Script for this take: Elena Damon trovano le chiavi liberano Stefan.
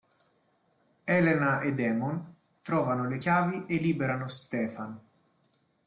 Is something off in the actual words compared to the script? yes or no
yes